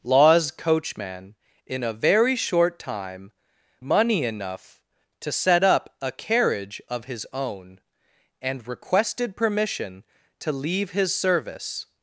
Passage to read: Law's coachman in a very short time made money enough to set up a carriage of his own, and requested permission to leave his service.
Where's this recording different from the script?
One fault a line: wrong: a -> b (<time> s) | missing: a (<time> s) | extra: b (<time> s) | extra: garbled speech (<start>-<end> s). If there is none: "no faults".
missing: made (3.3 s)